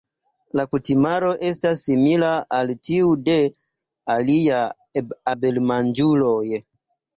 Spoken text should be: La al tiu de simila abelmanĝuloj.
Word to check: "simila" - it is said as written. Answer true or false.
false